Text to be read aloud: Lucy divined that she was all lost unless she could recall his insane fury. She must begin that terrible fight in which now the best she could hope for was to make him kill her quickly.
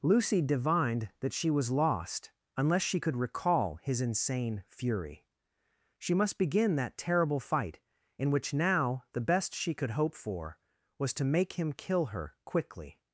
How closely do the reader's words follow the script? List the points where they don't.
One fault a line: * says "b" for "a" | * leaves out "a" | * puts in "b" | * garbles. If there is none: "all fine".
* leaves out "all"